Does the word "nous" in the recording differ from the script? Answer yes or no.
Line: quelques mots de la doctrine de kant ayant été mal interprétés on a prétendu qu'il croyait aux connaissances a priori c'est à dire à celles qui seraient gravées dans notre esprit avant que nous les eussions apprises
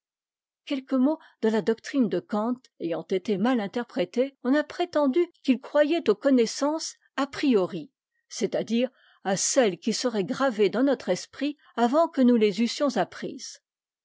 no